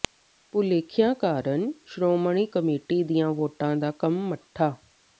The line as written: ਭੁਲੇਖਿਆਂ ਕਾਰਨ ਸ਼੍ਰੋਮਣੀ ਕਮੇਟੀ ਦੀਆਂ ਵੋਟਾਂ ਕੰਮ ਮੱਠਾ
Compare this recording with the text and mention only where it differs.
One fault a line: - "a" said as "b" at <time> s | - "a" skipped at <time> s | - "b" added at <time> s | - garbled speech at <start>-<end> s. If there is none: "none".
- "ਦਾ" added at 3.8 s